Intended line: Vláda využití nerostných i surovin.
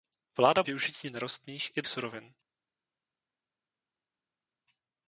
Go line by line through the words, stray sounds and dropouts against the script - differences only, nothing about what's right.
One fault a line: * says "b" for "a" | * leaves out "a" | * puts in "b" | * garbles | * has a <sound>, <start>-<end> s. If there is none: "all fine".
all fine